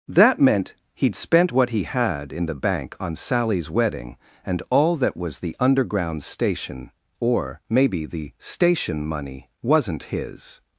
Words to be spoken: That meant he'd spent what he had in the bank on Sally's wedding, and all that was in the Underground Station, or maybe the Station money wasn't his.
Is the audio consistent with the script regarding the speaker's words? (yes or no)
no